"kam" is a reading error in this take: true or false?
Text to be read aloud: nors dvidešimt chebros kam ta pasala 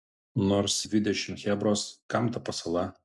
false